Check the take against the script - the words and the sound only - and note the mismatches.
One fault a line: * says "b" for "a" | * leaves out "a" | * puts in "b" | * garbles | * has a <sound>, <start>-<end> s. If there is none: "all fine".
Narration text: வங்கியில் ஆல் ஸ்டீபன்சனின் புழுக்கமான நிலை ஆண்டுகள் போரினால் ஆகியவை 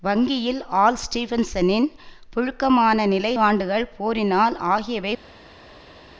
all fine